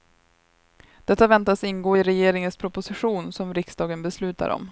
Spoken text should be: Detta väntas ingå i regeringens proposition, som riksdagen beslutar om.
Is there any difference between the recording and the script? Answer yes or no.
no